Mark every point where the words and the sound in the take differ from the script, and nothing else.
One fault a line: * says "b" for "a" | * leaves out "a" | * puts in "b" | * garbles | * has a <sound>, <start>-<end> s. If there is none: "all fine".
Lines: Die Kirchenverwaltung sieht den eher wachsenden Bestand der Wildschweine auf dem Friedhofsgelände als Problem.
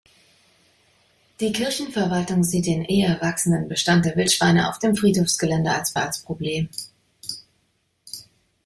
* puts in "als"